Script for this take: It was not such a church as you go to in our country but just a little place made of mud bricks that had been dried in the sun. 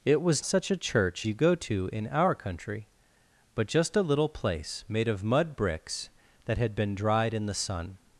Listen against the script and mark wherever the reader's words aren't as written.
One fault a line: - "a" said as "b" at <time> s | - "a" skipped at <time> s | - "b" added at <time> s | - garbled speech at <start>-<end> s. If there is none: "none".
- "not" skipped at 0.4 s
- "as" skipped at 1.3 s